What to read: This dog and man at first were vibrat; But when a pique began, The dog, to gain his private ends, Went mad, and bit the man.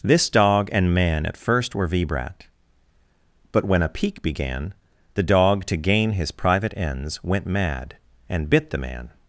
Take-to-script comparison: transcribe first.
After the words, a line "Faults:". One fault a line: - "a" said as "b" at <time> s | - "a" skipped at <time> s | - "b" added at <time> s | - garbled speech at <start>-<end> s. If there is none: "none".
This dog and man at first were vibrat; But when a pique began, The dog, to gain his private ends, Went mad, and bit the man.
Faults:
none